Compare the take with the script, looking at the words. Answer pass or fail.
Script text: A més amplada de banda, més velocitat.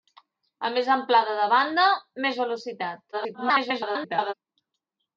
fail